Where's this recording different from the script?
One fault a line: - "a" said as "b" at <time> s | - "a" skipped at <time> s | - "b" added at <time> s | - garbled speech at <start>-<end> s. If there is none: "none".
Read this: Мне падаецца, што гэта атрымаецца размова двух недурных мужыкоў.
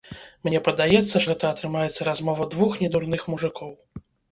- "што" skipped at 1.2 s